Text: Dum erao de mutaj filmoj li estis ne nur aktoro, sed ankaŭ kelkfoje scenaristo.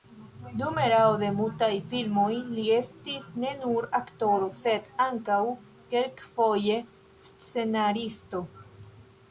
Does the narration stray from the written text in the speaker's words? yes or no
no